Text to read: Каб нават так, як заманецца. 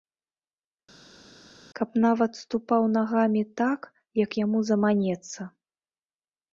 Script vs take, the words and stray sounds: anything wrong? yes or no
yes